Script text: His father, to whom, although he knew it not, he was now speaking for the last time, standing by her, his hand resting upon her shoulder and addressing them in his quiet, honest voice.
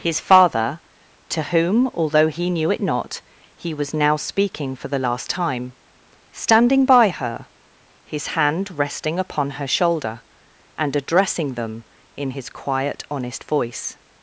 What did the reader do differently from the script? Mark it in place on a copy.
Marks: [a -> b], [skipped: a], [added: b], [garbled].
His father, to whom, although he knew it not, he was now speaking for the last time, standing by her, his hand resting upon her shoulder and addressing them in his quiet, honest voice.